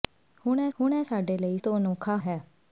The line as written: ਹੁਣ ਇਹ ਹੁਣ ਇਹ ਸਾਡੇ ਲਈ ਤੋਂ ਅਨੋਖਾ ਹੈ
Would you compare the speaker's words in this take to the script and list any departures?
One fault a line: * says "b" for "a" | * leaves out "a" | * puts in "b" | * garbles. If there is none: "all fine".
all fine